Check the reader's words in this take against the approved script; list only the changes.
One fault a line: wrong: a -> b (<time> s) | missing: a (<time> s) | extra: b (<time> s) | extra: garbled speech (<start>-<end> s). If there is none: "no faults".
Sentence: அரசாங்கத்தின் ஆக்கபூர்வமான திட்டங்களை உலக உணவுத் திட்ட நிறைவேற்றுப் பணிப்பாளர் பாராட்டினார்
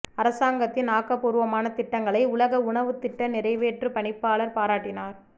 no faults